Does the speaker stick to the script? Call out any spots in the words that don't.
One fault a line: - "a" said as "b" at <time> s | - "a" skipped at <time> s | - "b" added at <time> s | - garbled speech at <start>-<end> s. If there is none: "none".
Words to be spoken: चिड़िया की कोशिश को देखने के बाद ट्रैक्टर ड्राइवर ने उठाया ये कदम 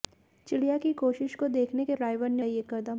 - "बाद ट्रैक्टर" skipped at 1.9 s
- "उठाया" skipped at 2.4 s